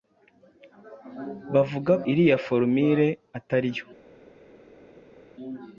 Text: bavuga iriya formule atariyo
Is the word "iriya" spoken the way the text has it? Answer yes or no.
yes